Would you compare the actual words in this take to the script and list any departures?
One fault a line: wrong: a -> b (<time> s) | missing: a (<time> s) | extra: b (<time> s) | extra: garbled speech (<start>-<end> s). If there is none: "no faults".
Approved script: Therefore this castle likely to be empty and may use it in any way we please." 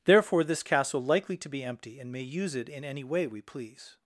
no faults